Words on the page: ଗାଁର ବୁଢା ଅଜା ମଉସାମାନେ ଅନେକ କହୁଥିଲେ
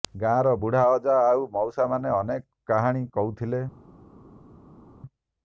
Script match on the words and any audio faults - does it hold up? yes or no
no